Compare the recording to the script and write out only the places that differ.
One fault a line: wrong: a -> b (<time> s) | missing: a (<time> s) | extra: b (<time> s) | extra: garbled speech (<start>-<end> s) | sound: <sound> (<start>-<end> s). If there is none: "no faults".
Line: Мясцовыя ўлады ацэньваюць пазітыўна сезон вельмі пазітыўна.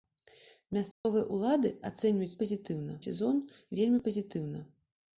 sound: dropout (0.9-1.1 s)